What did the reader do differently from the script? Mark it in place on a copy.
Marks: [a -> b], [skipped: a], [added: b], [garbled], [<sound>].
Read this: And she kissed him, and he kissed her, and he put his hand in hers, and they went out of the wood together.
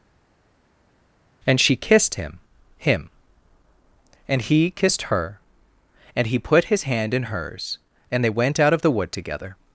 And she kissed him, [added: him] and he kissed her, and he put his hand in hers, and they went out of the wood together.